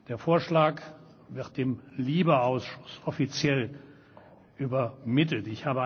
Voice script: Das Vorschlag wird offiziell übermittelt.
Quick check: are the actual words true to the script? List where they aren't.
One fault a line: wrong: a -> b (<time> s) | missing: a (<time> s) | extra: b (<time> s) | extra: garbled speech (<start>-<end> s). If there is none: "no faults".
wrong: Das -> Der (0.1 s)
extra: dem LIBE Ausschuss (1.6 s)